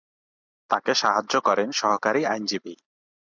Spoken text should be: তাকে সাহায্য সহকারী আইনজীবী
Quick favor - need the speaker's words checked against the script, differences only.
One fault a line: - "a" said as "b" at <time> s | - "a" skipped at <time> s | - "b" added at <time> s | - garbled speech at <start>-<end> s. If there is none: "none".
- "করেন" added at 1.4 s